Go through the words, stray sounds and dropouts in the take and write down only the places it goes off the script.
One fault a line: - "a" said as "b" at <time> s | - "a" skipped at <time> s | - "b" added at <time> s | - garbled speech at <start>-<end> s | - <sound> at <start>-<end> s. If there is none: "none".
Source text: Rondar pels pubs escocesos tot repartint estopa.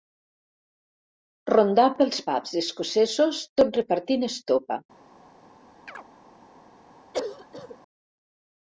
- chirp at 5.9-6.1 s
- cough at 7.1-7.8 s